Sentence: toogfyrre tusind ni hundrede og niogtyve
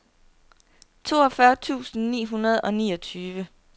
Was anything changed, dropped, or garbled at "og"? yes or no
no